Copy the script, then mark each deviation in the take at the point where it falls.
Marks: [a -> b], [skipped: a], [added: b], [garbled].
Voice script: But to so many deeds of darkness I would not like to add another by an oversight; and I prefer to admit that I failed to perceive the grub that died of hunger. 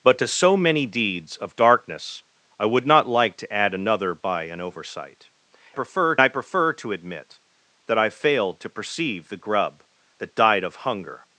But to so many deeds of darkness I would not like to add another by an oversight; [and -> prefer] I prefer to admit that I failed to perceive the grub that died of hunger.